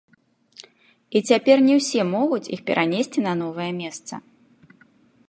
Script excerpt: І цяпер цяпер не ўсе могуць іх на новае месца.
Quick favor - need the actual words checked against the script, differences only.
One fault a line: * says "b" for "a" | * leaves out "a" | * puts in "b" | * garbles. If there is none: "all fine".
* leaves out "цяпер"
* puts in "перанесці"